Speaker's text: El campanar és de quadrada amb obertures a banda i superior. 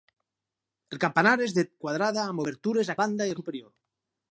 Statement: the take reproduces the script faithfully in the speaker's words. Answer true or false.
true